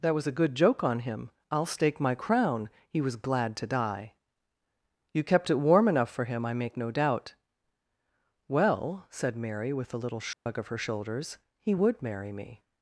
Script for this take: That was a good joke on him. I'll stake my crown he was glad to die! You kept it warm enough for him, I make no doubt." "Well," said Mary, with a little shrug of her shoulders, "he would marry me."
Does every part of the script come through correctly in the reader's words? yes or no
yes